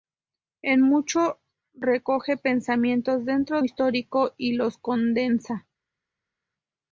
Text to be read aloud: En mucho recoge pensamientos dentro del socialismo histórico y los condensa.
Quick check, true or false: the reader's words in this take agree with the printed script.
false